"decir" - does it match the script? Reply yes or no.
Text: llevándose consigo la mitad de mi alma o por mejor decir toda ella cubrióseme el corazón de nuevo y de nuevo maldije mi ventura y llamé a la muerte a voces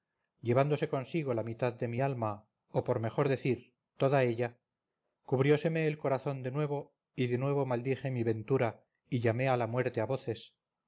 yes